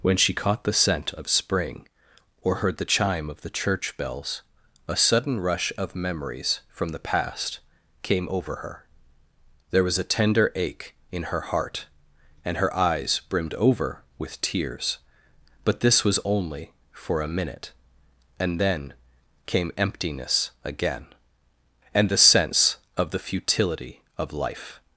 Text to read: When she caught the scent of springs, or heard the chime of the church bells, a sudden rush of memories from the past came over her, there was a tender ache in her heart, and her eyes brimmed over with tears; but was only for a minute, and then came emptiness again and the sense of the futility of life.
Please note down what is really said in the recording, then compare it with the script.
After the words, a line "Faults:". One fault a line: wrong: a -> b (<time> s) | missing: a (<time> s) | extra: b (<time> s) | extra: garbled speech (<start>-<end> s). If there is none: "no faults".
When she caught the scent of spring, or heard the chime of the church bells, a sudden rush of memories from the past came over her, there was a tender ache in her heart, and her eyes brimmed over with tears; but this was only for a minute, and then came emptiness again and the sense of the futility of life.
Faults:
wrong: springs -> spring (1.3 s)
extra: this (15.8 s)